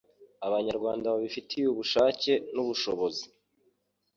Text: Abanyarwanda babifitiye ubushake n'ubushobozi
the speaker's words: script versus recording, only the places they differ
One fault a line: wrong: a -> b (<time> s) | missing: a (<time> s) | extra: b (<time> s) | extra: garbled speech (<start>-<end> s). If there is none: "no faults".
no faults